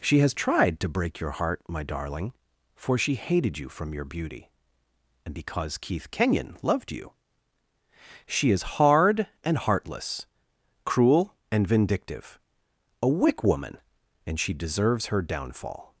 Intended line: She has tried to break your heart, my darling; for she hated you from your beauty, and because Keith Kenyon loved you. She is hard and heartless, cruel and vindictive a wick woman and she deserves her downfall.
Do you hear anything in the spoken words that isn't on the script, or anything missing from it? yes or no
no